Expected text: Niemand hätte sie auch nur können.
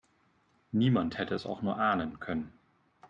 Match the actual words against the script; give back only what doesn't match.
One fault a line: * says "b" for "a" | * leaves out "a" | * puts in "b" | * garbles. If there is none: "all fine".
* says "es" for "sie"
* puts in "ahnen"